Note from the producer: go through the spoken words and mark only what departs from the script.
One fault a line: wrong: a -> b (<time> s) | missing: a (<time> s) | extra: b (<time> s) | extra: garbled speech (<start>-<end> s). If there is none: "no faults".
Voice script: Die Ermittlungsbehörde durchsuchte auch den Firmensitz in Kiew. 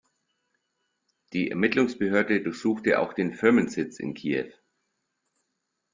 no faults